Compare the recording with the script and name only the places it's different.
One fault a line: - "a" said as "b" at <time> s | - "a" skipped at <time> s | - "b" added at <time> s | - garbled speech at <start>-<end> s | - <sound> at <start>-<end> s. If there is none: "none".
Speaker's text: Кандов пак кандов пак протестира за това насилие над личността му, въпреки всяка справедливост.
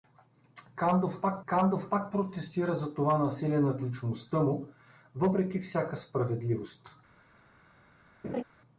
- laugh at 8.2-8.4 s